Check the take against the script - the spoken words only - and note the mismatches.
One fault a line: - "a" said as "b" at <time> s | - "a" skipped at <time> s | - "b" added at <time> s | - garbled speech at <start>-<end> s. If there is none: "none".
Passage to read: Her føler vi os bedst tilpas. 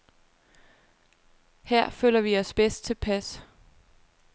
none